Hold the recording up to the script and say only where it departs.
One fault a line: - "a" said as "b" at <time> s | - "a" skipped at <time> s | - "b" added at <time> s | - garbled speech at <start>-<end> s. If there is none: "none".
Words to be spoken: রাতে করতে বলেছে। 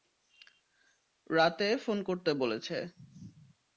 - "ফোন" added at 1.8 s